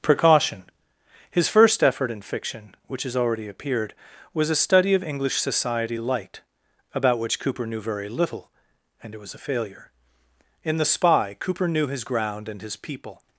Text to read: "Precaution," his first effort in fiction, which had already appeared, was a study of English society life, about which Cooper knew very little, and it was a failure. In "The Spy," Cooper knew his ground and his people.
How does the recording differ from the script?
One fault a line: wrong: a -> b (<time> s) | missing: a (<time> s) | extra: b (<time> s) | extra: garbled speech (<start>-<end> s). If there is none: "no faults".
wrong: had -> has (3.0 s)
wrong: life -> light (6.0 s)